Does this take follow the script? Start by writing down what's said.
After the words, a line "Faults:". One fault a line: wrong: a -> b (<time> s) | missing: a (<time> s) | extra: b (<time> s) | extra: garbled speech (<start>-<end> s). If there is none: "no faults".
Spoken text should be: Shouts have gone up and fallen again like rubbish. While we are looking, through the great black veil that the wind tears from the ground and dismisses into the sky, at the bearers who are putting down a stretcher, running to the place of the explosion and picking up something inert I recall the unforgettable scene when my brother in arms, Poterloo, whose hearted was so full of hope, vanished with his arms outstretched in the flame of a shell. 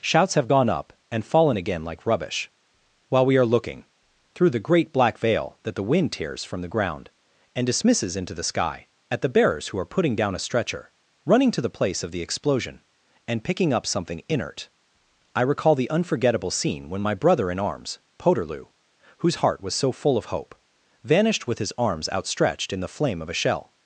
Shouts have gone up and fallen again like rubbish. While we are looking, through the great black veil that the wind tears from the ground and dismisses into the sky, at the bearers who are putting down a stretcher, running to the place of the explosion and picking up something inert I recall the unforgettable scene when my brother in arms, Poterloo, whose heart was so full of hope, vanished with his arms outstretched in the flame of a shell.
Faults:
wrong: hearted -> heart (19.4 s)